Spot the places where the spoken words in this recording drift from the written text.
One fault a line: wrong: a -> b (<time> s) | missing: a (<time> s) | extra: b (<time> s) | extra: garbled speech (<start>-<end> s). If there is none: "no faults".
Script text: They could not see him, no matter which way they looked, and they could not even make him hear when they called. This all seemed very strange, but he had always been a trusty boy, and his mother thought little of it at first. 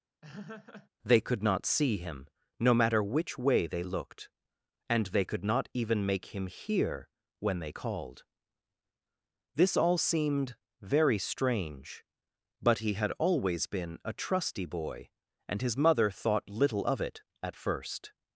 no faults